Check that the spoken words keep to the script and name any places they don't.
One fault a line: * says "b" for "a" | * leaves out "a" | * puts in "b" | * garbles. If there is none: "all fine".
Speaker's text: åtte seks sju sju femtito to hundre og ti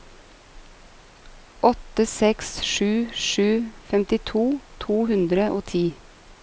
all fine